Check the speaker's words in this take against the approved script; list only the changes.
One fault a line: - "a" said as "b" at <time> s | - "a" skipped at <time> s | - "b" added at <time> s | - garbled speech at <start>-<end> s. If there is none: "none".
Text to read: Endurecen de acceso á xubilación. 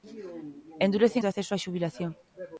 none